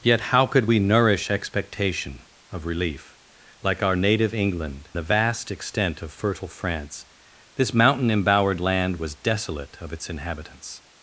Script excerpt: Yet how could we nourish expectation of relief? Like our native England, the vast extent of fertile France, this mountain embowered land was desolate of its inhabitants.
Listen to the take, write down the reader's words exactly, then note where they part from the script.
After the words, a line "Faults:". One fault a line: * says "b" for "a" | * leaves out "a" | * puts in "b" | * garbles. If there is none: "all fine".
Yet how could we nourish expectation of relief? Like our native England, the vast extent of fertile France, this mountain embowered land was desolate of its inhabitants.
Faults:
all fine